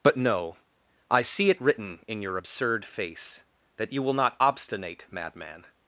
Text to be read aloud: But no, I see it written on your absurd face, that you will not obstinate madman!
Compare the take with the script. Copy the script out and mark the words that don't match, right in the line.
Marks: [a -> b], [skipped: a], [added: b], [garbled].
But no, I see it written [on -> in] your absurd face, that you will not obstinate madman!